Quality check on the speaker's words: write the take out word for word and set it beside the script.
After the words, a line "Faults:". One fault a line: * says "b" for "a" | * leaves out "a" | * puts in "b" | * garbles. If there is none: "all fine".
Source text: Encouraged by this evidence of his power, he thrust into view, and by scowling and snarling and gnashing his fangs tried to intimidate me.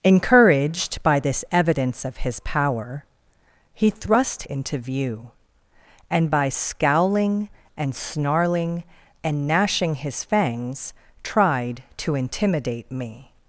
Encouraged by this evidence of his power, he thrust into view, and by scowling and snarling and gnashing his fangs tried to intimidate me.
Faults:
all fine